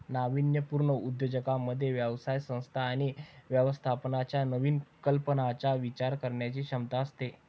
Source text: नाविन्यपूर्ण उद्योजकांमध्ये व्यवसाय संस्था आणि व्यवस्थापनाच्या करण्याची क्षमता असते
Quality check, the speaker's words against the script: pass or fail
fail